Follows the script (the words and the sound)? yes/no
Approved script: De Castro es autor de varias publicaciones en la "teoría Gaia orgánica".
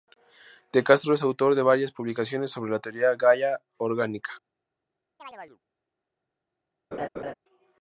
no